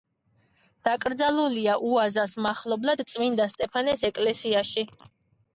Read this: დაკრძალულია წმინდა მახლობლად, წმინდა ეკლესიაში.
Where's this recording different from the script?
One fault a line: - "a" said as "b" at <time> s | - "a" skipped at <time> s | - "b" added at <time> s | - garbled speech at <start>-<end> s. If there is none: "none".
- "წმინდა" said as "უაზას" at 1.9 s
- "სტეფანეს" added at 3.6 s